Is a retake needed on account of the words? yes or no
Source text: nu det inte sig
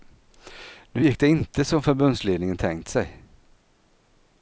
yes